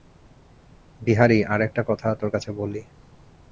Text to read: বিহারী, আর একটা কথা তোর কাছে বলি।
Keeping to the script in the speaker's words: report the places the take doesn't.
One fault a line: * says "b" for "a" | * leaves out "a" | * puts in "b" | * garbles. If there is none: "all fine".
all fine